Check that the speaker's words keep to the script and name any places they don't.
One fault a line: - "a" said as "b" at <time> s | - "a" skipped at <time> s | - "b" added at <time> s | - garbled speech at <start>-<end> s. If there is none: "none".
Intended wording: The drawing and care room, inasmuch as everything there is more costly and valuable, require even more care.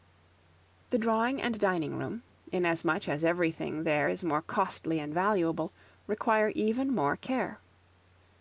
- "care" said as "dining" at 1.6 s